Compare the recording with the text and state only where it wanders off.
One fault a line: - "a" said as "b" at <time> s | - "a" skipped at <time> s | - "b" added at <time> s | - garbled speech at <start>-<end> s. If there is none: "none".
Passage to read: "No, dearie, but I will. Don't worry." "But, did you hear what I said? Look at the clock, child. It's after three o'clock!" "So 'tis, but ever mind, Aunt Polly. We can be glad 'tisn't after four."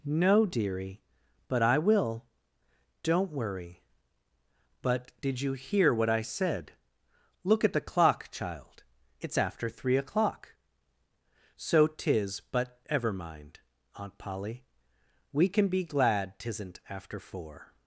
none